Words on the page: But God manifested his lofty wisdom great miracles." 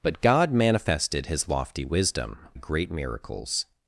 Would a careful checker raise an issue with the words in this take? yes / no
no